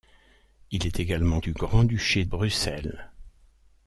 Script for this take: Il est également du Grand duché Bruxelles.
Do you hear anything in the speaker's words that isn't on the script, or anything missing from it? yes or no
no